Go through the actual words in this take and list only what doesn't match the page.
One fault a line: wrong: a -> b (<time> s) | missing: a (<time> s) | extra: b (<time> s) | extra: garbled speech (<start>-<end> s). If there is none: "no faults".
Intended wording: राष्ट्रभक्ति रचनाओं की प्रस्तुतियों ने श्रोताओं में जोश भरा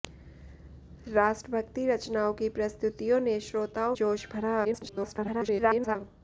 missing: में (4.0 s)
extra: garbled speech (4.6-6.0 s)